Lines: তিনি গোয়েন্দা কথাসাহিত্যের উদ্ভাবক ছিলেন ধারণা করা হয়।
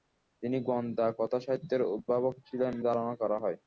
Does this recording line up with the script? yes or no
yes